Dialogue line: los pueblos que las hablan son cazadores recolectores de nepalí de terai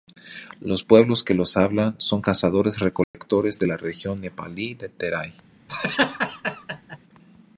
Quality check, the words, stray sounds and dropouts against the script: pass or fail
fail